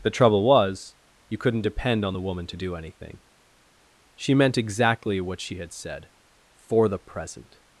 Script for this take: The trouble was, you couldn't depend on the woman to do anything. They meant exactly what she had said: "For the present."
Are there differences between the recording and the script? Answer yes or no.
yes